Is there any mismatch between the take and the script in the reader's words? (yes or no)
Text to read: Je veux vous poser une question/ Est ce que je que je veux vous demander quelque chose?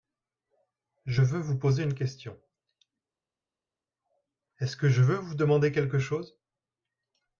yes